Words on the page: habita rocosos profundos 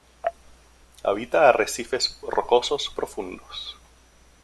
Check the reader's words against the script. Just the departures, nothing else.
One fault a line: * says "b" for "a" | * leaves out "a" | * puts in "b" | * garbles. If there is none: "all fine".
* puts in "arrecifes"